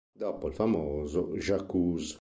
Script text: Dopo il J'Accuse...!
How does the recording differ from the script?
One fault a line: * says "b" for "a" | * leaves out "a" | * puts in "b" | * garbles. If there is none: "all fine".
* puts in "famoso"